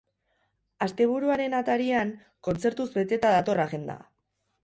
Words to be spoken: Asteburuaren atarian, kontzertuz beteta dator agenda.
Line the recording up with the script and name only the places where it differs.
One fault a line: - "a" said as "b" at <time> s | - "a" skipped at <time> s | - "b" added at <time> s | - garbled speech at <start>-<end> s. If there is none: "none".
none